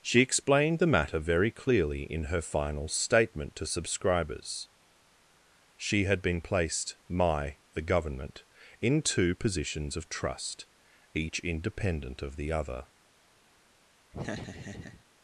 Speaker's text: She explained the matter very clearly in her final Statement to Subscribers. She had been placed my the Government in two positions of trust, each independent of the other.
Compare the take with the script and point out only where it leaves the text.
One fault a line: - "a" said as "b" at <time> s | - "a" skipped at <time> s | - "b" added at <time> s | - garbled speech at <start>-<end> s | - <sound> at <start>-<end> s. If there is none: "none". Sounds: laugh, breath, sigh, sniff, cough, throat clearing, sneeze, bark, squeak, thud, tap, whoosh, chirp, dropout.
- laugh at 14.1-15.0 s